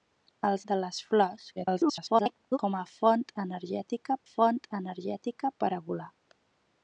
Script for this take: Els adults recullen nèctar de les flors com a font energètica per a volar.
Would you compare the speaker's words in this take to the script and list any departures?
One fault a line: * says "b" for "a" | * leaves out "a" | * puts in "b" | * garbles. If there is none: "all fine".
* leaves out "adults recullen nèctar"
* garbles
* puts in "font energètica"